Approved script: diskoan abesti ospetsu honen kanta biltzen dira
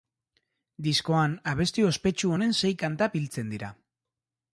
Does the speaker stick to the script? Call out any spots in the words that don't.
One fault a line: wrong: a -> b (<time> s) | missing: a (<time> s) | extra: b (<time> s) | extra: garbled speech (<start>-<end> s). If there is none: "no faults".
extra: sei (2.6 s)